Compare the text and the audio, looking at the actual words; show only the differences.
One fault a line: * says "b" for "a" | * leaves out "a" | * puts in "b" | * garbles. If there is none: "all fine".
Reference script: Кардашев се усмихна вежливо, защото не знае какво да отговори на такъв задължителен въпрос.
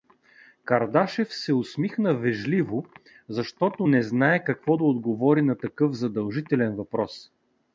all fine